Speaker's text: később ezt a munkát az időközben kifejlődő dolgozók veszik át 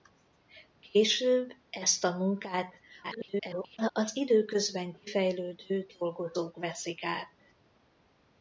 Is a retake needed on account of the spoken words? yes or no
yes